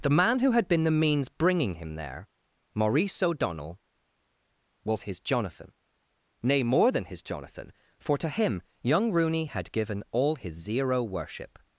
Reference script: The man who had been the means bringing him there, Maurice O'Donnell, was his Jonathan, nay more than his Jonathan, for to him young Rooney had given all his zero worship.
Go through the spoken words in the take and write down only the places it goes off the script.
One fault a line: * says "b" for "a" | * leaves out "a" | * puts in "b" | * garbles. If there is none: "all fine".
all fine